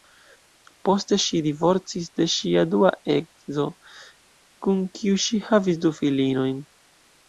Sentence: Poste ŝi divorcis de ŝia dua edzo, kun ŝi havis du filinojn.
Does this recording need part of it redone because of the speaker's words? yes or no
yes